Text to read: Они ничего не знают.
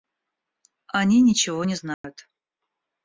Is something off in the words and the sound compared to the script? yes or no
yes